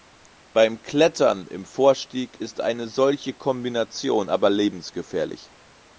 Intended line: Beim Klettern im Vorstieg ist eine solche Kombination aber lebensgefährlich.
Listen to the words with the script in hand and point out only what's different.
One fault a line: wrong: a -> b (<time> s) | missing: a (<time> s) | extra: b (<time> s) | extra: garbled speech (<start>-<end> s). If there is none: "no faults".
no faults